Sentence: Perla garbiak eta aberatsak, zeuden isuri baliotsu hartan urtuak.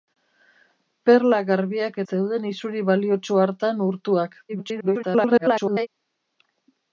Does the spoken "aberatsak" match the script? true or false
false